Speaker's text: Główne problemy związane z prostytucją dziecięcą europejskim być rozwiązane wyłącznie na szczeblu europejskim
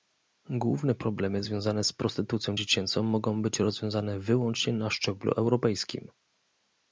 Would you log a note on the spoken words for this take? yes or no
yes